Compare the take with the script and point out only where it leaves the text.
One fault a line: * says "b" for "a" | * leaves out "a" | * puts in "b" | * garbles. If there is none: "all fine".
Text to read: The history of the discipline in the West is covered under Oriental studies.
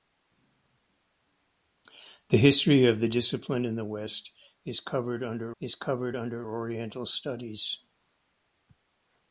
* puts in "is covered under"